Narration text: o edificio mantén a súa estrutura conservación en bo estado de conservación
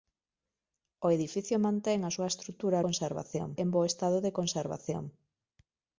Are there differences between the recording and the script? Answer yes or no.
no